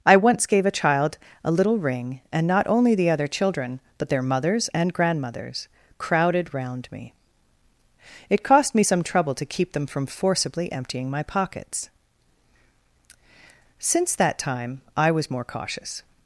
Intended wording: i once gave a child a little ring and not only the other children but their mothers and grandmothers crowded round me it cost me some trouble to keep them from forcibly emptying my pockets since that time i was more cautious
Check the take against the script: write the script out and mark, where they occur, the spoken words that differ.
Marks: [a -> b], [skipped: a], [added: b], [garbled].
i once gave a child a little ring and not only the other children but their mothers and grandmothers crowded round me it cost me some trouble to keep them from forcibly emptying my pockets since that time i was more cautious